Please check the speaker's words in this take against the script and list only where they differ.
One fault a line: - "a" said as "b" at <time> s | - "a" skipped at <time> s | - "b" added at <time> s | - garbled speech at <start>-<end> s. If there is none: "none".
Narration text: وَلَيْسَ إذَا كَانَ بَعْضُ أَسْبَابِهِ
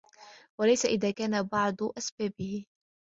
none